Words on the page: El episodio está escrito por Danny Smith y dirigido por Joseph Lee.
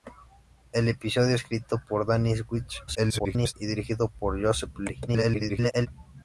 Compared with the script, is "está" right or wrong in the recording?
wrong